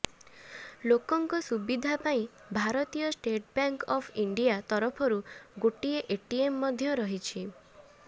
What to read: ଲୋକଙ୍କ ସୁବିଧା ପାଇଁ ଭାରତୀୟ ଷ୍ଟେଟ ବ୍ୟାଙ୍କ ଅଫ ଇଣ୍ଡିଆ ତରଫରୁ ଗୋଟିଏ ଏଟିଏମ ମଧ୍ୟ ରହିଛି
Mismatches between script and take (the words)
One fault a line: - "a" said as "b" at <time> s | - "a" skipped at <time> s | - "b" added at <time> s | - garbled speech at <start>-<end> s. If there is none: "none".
none